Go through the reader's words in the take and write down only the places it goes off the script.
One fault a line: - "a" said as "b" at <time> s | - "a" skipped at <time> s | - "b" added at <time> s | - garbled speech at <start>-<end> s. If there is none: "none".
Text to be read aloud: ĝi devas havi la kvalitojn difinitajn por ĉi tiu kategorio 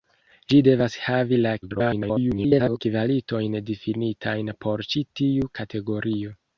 - garbled speech at 1.6-2.8 s